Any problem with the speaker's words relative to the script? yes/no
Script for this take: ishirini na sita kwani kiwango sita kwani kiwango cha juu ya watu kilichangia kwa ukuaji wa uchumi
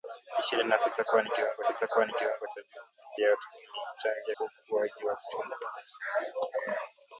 no